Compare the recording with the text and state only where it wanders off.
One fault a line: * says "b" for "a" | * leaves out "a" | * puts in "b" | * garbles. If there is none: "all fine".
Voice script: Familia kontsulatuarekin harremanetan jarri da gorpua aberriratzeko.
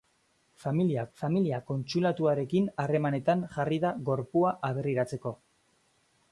* puts in "familia"